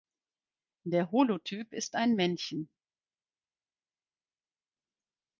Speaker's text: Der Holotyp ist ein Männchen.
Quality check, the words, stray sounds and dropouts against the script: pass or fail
pass